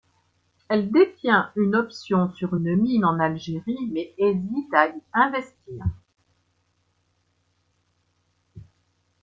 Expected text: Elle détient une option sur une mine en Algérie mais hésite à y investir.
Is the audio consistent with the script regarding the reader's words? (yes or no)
yes